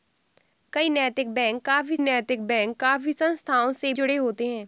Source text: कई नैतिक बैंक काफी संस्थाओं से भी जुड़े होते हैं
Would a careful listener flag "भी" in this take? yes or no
yes